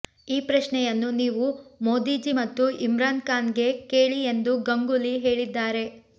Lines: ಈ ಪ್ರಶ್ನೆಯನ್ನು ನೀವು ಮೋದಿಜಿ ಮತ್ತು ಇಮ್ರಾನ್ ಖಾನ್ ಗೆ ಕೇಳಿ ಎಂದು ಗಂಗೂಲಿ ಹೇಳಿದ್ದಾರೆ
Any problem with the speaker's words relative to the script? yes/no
no